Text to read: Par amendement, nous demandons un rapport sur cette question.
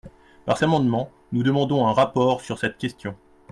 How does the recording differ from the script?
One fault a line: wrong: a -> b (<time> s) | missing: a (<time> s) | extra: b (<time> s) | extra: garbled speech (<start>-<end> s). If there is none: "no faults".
no faults